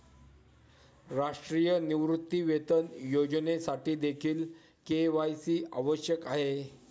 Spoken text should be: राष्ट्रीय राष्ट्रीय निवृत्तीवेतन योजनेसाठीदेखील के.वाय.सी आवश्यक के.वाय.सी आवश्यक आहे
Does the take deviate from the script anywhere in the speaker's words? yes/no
yes